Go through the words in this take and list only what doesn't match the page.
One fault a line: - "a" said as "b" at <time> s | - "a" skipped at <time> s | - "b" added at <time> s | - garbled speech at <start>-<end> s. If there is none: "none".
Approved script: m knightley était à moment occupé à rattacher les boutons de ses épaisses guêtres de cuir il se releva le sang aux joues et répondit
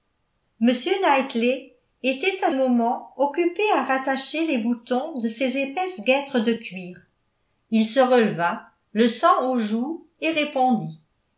none